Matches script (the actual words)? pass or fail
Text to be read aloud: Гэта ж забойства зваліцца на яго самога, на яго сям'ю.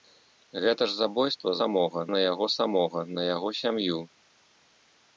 fail